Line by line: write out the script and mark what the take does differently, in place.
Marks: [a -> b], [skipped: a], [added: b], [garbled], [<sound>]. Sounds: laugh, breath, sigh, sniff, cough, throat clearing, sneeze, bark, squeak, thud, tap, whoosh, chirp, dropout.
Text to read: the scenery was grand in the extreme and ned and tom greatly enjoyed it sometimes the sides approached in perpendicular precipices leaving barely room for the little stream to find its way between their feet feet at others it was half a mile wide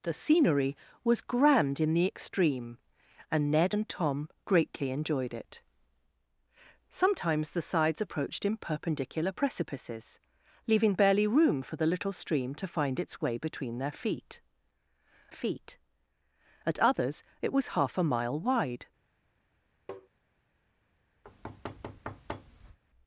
the scenery was grand in the extreme and ned and tom greatly enjoyed it sometimes the sides approached in perpendicular precipices leaving barely room for the little stream to find its way between their feet feet at others it was half a mile wide [tap] [thud]